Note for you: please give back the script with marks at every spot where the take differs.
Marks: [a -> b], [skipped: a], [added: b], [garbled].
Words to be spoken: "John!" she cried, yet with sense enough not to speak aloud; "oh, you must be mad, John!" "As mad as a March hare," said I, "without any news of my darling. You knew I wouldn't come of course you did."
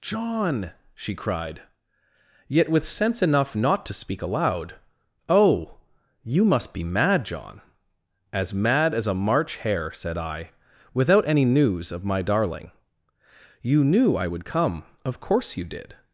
"John!" she cried, yet with sense enough not to speak aloud; "oh, you must be mad, John!" "As mad as a March hare," said I, "without any news of my darling. You knew I [wouldn't -> would] come of course you did."